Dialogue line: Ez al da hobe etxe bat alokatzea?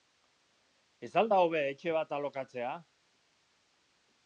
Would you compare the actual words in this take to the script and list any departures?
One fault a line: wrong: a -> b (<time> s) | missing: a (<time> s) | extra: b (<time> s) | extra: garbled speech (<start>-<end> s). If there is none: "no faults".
no faults